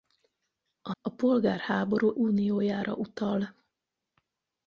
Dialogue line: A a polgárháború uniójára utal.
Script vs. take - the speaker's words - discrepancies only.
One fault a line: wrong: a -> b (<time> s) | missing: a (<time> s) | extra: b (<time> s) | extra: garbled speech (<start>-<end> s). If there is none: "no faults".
no faults